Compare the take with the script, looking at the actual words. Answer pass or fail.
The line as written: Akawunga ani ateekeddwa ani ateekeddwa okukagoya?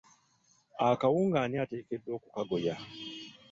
fail